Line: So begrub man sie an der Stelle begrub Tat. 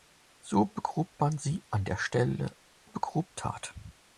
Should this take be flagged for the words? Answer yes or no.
no